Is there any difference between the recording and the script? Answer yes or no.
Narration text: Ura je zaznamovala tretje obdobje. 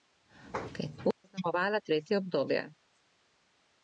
yes